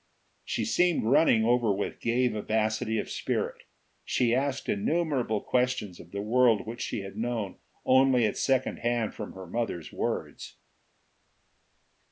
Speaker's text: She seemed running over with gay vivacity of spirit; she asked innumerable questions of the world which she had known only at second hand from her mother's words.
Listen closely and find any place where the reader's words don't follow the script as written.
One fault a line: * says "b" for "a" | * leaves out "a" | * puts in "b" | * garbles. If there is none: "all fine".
all fine